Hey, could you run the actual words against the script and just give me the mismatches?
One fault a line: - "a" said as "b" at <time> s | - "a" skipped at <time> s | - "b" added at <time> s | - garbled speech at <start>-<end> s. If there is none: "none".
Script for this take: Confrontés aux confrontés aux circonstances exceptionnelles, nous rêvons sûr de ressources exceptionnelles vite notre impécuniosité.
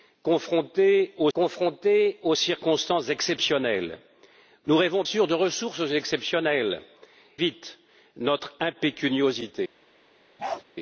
none